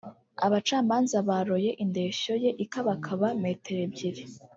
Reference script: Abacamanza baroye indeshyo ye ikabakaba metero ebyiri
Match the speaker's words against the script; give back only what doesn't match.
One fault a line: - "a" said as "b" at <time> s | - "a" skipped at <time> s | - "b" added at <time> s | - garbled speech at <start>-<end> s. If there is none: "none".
none